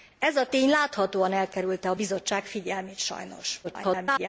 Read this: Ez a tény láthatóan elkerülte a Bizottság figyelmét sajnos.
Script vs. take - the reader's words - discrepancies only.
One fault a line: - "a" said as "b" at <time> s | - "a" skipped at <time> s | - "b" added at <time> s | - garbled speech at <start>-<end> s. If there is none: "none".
- garbled speech at 3.6-4.3 s